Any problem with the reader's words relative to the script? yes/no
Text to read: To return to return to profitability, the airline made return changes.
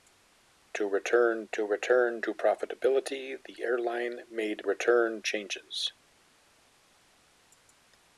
no